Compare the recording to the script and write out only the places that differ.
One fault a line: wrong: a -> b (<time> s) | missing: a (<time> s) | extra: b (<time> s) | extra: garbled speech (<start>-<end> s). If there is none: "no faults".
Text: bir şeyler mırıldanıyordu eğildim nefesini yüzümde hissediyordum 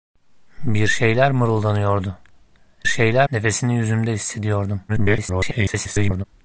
wrong: eğildim -> şeyler (2.8 s)
extra: garbled speech (4.9-6.2 s)